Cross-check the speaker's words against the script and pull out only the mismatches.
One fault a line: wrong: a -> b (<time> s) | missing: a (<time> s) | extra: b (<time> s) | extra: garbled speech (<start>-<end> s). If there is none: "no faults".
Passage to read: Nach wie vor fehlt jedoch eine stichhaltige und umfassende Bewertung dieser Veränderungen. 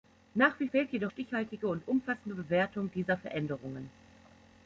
missing: vor (0.7 s)
missing: eine (1.1 s)